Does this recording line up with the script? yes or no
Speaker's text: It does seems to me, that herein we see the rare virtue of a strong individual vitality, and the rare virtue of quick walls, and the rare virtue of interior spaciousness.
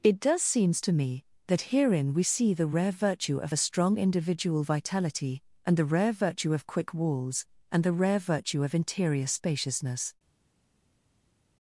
yes